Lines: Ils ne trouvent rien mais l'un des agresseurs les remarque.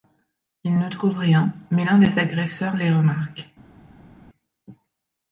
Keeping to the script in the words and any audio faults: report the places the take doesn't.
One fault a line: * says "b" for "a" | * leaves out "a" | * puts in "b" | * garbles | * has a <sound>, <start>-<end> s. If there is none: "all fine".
all fine